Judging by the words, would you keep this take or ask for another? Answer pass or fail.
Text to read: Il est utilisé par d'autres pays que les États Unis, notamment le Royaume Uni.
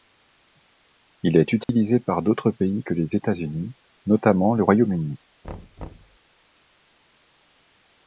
pass